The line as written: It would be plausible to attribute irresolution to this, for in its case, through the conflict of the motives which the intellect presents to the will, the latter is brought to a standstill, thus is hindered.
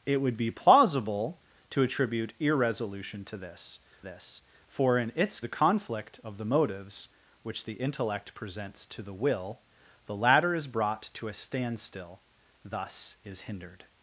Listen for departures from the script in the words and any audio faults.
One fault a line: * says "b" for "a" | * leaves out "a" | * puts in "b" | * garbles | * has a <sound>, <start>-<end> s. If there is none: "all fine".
* puts in "this"
* leaves out "case through"